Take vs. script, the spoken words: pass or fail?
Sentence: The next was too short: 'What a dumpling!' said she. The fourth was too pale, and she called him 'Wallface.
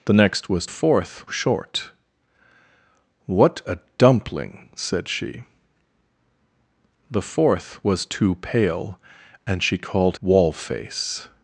fail